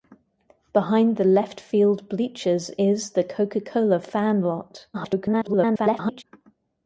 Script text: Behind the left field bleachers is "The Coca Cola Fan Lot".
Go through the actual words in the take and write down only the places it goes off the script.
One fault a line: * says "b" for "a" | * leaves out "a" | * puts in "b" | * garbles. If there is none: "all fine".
* garbles